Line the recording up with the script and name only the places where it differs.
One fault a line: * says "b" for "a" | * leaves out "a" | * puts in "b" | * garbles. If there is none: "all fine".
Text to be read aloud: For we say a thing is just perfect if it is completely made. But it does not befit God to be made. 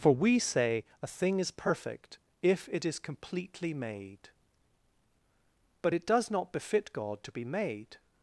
* leaves out "just"